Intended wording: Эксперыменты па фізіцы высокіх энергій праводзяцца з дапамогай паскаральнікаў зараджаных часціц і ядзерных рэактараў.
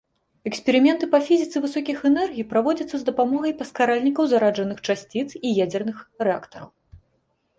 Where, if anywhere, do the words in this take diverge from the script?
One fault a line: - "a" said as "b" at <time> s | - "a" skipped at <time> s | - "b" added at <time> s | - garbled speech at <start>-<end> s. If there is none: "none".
none